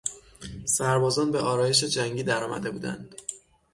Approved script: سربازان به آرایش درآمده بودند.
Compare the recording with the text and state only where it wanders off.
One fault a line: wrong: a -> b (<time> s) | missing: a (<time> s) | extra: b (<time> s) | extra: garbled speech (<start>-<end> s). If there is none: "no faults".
extra: جنگی (1.8 s)